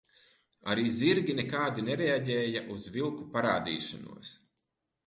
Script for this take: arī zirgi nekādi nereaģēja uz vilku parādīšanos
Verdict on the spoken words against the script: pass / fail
pass